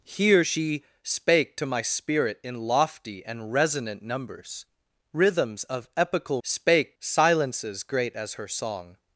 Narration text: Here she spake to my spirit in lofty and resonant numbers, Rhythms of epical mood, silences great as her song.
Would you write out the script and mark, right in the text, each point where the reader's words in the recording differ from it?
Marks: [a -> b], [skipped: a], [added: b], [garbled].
Here she spake to my spirit in lofty and resonant numbers, Rhythms of epical [mood, -> spake] silences great as her song.